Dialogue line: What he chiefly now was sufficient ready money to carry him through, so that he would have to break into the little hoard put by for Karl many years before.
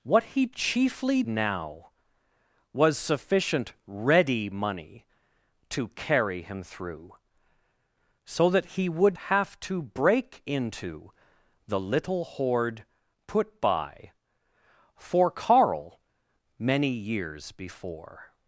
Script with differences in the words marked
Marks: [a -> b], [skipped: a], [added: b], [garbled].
What he chiefly now was sufficient ready money to carry him through, so that he would have to break into the little hoard put by for Karl many years before.